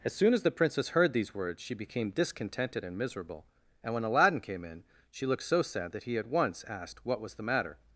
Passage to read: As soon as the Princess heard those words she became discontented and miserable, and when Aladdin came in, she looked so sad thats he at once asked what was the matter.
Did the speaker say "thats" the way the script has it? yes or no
no